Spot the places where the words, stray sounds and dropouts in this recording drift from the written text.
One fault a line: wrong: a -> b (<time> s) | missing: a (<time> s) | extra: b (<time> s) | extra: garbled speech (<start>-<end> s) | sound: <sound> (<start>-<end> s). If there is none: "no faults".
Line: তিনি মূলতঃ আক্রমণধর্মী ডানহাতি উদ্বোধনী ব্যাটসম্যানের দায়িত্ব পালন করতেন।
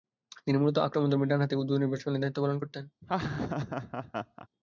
sound: laugh (3.0-4.5 s)